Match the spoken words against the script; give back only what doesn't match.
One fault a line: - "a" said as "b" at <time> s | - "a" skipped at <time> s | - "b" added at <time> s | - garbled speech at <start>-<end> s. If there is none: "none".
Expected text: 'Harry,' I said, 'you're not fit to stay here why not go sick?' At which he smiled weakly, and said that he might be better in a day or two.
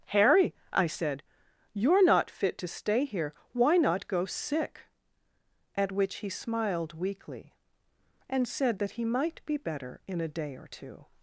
none